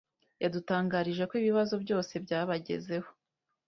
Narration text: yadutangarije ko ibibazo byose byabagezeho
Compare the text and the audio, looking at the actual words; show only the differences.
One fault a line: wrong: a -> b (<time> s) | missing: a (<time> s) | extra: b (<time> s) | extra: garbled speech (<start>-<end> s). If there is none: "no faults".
no faults